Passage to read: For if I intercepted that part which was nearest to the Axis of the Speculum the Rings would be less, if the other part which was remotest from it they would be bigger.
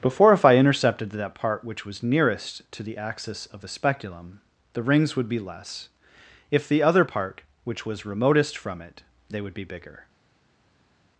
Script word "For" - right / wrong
wrong